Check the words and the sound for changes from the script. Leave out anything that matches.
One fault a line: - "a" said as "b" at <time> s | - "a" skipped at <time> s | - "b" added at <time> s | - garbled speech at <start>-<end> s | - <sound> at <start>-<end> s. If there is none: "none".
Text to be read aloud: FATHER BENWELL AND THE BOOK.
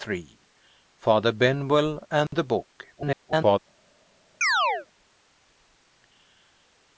- dropout at 2.3-2.3 s
- garbled speech at 2.9-3.6 s
- chirp at 4.4-4.9 s